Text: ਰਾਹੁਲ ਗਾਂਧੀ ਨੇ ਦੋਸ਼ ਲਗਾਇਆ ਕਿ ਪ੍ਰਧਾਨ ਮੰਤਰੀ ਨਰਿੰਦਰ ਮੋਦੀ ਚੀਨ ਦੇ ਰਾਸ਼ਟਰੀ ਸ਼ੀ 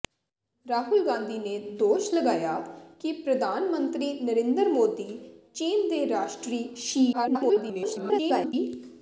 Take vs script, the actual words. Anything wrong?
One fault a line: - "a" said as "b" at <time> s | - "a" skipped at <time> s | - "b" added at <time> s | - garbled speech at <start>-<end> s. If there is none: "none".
- garbled speech at 7.1-8.5 s